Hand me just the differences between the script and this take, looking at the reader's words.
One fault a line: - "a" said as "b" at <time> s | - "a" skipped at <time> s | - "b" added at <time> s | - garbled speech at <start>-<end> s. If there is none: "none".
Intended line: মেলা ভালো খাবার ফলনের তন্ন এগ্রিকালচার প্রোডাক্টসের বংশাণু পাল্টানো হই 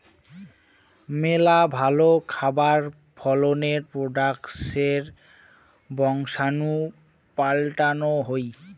- "তন্ন এগ্রিকালচার" skipped at 3.8 s